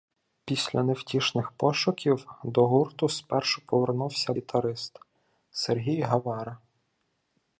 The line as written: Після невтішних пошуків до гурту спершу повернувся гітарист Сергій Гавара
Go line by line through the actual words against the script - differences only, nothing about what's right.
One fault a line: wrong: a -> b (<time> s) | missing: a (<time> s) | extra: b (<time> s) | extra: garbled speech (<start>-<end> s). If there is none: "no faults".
no faults